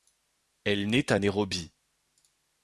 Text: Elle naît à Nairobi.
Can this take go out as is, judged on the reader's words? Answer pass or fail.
pass